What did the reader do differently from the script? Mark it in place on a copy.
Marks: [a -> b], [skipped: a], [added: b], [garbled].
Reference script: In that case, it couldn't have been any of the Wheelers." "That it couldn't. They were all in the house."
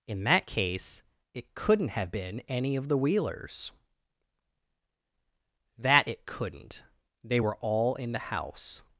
In that case, it couldn't have been any of the Wheelers." "That it couldn't. They were all in the house."